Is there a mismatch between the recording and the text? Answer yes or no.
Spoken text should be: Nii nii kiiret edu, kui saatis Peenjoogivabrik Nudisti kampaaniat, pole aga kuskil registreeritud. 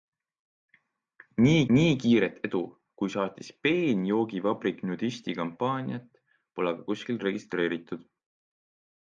no